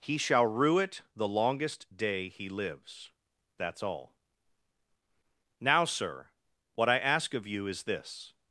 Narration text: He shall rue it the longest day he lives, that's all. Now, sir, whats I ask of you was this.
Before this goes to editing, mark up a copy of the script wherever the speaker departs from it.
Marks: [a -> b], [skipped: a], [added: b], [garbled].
He shall rue it the longest day he lives, that's all. Now, sir, [whats -> what] I ask of you [was -> is] this.